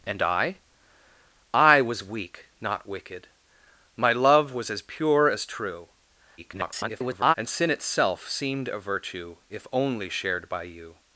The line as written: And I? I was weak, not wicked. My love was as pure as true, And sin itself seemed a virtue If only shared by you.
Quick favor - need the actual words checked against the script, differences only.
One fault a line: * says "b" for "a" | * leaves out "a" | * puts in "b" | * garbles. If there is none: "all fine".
* garbles